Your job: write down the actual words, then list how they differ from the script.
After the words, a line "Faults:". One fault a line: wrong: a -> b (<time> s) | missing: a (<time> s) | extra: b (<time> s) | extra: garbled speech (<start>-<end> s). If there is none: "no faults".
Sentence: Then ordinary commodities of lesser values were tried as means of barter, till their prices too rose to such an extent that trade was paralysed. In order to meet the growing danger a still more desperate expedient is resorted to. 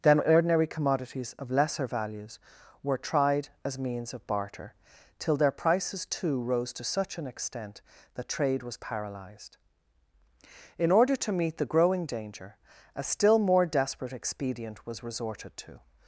Then ordinary commodities of lesser values were tried as means of barter, till their prices too rose to such an extent that trade was paralysed. In order to meet the growing danger a still more desperate expedient was resorted to.
Faults:
wrong: is -> was (14.9 s)